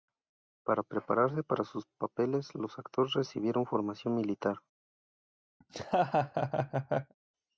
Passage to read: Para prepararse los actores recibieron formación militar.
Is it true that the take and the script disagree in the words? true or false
true